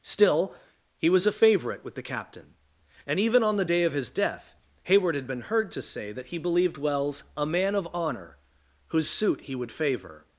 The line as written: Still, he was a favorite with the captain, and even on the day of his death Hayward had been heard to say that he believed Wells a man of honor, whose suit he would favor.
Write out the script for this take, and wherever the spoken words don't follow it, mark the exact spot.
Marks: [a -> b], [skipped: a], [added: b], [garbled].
Still, he was a favorite with the captain, and even on the day of his death Hayward had been heard to say that he believed Wells a man of honor, whose suit he would favor.